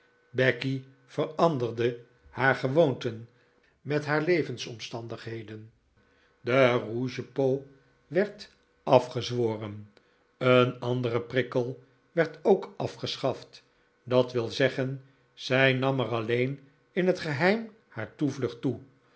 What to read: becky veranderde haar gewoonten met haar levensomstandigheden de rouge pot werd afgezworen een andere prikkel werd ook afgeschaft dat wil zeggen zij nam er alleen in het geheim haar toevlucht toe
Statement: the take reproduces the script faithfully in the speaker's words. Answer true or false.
true